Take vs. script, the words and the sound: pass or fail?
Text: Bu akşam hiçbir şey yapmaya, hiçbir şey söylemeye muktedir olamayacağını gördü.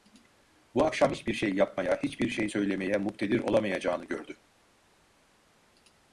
pass